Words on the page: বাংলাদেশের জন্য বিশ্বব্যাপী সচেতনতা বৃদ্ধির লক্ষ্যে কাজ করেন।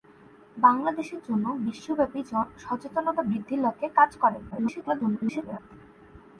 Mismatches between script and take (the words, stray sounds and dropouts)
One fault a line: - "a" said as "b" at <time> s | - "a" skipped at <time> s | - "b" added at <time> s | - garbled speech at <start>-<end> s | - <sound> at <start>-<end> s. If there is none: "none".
- garbled speech at 4.5-5.6 s